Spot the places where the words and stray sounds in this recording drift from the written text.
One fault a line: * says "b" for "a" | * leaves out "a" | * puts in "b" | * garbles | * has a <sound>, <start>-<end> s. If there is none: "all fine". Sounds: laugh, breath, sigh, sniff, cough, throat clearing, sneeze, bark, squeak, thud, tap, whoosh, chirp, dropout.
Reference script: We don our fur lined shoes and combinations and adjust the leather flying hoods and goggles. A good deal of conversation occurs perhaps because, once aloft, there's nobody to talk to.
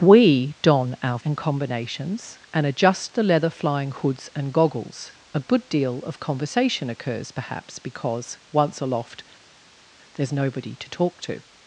* leaves out "fur lined shoes"